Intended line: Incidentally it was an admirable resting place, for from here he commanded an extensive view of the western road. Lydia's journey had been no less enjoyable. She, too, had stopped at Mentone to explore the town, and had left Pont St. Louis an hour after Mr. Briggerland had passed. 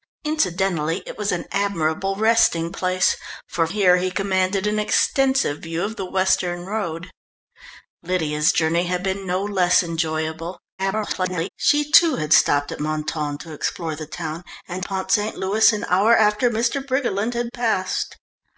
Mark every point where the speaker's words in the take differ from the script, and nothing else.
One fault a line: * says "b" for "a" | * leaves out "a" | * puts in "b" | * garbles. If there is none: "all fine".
* leaves out "from"
* garbles
* leaves out "had left"